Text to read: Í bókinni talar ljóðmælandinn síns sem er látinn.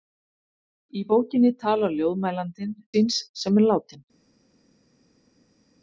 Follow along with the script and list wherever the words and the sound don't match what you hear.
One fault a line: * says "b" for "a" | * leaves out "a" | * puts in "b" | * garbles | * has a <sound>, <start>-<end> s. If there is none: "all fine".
all fine